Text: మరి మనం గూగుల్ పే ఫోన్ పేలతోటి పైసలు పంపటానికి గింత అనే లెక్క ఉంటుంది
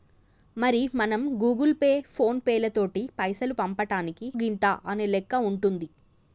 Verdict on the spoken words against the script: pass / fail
pass